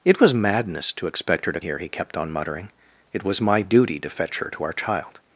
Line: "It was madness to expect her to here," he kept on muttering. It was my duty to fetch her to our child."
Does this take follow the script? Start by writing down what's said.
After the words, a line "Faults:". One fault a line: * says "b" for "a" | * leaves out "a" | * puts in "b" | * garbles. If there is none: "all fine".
"It was madness to expect her to here," he kept on muttering. It was my duty to fetch her to our child."
Faults:
all fine